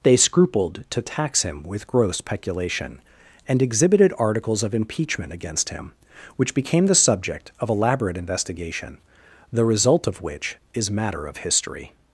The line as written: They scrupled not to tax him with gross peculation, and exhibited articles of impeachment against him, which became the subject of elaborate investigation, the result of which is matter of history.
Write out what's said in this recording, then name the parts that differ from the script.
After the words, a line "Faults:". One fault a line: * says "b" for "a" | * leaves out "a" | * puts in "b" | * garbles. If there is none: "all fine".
They scrupled to tax him with gross peculation, and exhibited articles of impeachment against him, which became the subject of elaborate investigation, the result of which is matter of history.
Faults:
* leaves out "not"